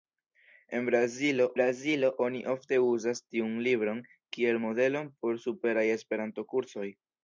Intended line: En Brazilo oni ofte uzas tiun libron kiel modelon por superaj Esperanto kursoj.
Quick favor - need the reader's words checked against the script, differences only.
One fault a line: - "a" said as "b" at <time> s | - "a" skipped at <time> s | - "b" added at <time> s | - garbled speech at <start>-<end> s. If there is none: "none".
- "Brazilo" added at 1.5 s